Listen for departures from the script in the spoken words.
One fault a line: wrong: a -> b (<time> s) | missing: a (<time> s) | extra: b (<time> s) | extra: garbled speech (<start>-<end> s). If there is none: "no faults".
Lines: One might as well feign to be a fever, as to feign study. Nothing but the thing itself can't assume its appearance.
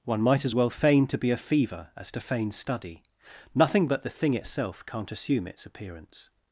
no faults